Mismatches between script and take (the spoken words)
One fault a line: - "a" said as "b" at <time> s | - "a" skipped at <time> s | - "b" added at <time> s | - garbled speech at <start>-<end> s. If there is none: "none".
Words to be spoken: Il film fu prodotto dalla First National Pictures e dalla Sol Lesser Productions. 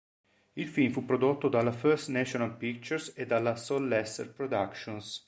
none